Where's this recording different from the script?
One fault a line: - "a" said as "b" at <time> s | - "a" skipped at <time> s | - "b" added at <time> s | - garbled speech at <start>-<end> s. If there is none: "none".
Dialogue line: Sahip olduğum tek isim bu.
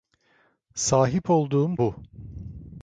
- "tek isim" skipped at 1.8 s